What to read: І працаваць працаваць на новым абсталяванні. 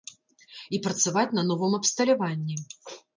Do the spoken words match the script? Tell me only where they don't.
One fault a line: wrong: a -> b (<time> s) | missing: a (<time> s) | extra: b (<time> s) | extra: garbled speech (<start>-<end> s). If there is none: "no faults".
missing: працаваць (1.3 s)